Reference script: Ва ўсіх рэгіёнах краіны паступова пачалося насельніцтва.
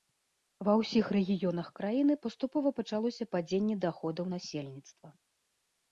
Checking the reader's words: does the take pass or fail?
fail